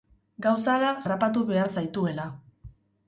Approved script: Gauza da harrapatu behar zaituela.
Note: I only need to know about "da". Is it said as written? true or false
true